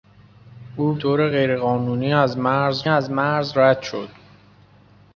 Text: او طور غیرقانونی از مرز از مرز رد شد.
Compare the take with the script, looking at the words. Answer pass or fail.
pass